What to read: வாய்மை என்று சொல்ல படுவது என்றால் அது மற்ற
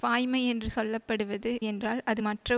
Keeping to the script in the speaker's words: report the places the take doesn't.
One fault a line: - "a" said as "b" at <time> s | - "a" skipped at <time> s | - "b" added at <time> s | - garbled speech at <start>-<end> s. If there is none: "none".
none